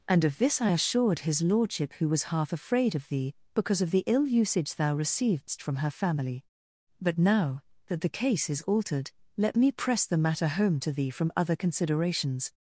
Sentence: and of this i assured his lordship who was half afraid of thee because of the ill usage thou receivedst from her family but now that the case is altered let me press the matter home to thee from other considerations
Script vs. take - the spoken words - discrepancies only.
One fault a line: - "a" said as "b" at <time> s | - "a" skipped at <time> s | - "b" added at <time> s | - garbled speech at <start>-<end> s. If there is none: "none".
none